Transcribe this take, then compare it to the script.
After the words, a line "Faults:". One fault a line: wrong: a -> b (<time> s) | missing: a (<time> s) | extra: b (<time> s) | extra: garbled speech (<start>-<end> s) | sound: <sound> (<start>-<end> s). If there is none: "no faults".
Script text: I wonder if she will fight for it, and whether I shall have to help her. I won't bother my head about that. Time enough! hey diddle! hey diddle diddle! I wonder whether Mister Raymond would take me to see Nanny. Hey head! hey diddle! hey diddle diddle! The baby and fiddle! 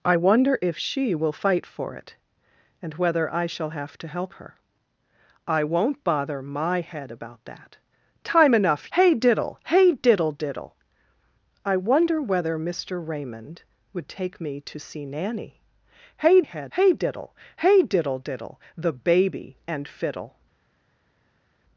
I wonder if she will fight for it, and whether I shall have to help her. I won't bother my head about that. Time enough! hey diddle! hey diddle diddle! I wonder whether Mister Raymond would take me to see Nanny. Hey head! hey diddle! hey diddle diddle! The baby and fiddle!
Faults:
no faults